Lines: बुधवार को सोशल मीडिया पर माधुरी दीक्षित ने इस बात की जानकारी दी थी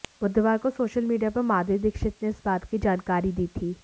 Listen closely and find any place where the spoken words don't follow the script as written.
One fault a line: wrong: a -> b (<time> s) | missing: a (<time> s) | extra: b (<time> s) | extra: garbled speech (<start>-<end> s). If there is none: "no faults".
no faults